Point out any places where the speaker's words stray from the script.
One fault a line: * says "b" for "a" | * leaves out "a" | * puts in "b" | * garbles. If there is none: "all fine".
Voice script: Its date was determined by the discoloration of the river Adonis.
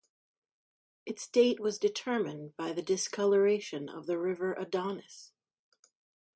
all fine